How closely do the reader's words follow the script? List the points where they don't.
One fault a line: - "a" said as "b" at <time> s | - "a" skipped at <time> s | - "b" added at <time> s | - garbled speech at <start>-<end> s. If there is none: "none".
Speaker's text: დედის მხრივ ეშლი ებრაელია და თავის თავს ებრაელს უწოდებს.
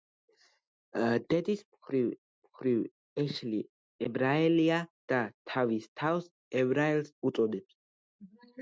- "მხრივ" added at 2.5 s